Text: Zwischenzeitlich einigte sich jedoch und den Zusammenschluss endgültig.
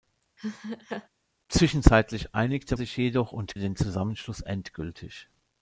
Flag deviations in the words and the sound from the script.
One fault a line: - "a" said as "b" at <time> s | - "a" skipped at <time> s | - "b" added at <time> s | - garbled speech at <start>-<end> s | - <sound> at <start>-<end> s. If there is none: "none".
- laugh at 0.4-1.1 s